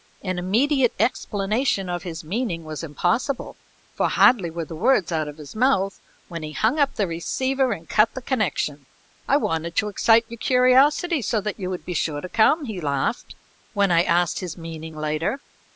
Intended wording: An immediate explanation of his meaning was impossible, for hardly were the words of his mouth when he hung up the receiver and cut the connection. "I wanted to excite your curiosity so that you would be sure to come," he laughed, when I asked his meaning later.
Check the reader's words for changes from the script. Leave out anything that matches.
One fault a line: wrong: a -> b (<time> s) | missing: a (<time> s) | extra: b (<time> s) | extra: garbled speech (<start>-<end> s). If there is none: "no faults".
extra: out (5.1 s)